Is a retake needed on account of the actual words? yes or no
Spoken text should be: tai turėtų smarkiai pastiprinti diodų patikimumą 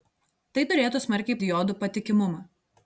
yes